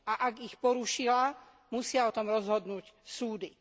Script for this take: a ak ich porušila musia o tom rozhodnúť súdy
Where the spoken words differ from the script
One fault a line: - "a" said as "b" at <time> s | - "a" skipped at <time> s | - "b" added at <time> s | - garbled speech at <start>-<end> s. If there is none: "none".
none